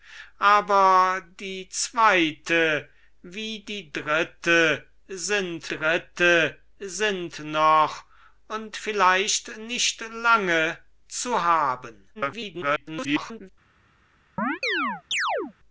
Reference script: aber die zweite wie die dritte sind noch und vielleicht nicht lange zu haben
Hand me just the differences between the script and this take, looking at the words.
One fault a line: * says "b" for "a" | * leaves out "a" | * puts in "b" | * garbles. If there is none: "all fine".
* puts in "dritte sind"
* garbles